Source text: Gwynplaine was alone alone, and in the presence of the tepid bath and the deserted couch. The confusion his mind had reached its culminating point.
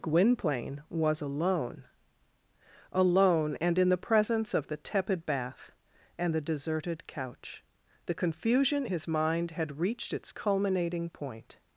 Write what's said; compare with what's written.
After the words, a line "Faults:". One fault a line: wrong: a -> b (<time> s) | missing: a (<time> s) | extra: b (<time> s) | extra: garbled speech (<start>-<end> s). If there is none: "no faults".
Gwynplaine was alone alone, and in the presence of the tepid bath and the deserted couch. The confusion his mind had reached its culminating point.
Faults:
no faults